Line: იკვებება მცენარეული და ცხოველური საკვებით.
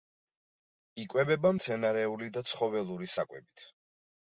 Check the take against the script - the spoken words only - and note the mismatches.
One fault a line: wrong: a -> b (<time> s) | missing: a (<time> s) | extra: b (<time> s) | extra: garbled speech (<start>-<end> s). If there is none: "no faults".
no faults